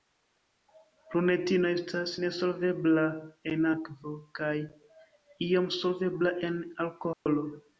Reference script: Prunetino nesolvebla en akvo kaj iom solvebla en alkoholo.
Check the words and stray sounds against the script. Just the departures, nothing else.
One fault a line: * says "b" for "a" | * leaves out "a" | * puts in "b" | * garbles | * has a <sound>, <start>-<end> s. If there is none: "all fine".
* puts in "estas"
* has a dropout, 7.1-7.3 s